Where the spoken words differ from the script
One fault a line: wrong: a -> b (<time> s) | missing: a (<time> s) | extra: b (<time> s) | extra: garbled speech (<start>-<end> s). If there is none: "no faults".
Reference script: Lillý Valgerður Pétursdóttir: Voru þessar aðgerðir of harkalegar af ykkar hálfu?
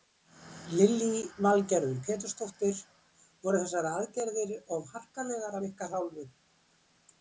no faults